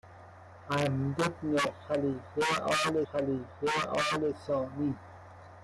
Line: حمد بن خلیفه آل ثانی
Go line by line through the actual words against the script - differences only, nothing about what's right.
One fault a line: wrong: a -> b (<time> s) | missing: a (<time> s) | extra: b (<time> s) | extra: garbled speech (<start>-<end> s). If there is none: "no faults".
extra: خلیفه آل (3.1 s)